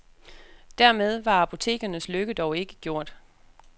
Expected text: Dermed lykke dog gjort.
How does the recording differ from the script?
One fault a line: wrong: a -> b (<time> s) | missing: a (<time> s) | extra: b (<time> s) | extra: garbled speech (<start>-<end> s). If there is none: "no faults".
extra: var apotekernes (1.2 s)
extra: ikke (2.6 s)